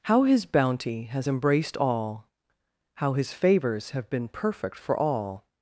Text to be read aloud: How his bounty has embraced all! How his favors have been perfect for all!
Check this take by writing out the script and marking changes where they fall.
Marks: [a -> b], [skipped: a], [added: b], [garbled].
How his bounty has embraced all! How his favors have been perfect for all!